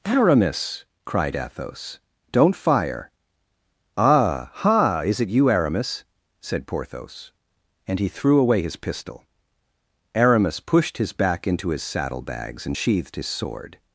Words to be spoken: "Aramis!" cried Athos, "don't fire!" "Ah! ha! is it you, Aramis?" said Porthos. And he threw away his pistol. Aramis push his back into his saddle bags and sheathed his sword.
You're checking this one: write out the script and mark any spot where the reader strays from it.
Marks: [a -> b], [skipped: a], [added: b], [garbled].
"Aramis!" cried Athos, "don't fire!" "Ah! ha! is it you, Aramis?" said Porthos. And he threw away his pistol. Aramis [push -> pushed] his back into his saddle bags and sheathed his sword.